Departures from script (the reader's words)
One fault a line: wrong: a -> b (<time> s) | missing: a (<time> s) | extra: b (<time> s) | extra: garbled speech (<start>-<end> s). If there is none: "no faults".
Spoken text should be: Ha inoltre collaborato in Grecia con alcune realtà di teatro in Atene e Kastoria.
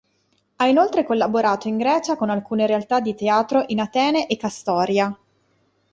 no faults